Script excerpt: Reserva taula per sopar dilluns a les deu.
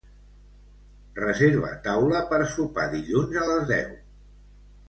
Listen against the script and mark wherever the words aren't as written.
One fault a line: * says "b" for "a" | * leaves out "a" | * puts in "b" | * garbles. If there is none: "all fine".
all fine